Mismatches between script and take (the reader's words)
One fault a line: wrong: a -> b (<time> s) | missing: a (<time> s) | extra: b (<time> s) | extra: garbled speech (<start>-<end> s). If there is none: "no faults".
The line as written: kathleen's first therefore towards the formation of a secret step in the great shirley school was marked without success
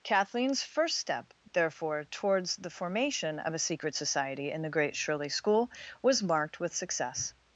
extra: step (1.0 s)
wrong: step -> society (4.0 s)
wrong: without -> with (6.6 s)